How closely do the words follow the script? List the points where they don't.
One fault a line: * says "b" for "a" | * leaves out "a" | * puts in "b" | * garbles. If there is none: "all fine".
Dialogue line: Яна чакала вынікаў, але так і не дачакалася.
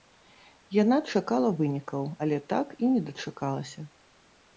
all fine